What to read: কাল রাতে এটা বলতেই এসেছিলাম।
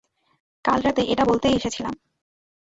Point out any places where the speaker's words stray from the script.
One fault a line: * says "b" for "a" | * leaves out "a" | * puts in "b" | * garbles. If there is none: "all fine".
all fine